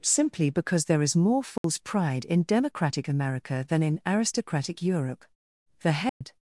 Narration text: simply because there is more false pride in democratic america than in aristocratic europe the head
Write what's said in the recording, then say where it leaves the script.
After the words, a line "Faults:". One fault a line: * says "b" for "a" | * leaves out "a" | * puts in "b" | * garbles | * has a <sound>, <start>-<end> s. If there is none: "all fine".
simply because there is more false pride in democratic america than in aristocratic europe the head
Faults:
* has a dropout, 1.6-1.6 s
* has a dropout, 6.1-6.2 s